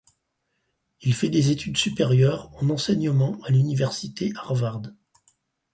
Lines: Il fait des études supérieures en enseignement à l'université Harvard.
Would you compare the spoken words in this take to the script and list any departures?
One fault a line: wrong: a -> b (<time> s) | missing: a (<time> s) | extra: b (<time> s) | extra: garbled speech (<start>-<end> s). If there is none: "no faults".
no faults